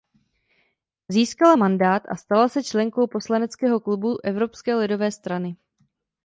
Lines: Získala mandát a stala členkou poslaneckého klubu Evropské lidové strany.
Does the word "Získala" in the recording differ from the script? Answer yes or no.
no